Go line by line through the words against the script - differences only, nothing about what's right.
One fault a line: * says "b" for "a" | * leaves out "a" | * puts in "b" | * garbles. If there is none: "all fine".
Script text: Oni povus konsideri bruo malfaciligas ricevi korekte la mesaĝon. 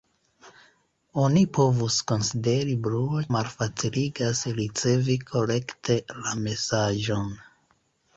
all fine